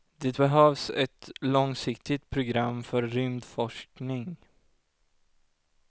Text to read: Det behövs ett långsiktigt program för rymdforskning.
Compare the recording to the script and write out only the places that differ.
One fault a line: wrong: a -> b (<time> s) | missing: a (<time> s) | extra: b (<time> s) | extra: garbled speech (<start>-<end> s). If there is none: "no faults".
no faults